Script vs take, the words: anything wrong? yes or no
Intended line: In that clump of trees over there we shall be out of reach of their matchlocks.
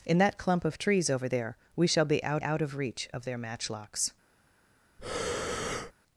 yes